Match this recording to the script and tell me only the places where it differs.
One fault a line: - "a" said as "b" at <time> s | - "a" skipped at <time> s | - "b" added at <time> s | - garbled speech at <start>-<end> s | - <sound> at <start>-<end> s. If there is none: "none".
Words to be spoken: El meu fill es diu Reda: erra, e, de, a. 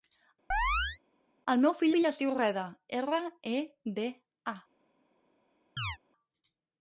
- chirp at 0.5-1.0 s
- "fill" added at 1.9 s
- chirp at 5.8-6.0 s